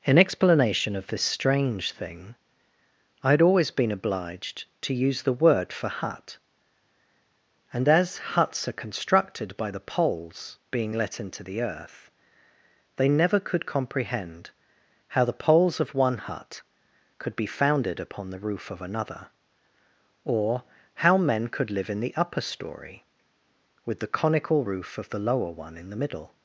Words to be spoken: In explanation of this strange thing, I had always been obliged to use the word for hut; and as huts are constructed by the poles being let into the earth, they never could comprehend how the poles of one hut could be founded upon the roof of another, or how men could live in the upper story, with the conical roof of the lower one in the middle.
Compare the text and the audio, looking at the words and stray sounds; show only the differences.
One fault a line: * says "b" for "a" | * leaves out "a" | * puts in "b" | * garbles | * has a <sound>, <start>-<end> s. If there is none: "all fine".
all fine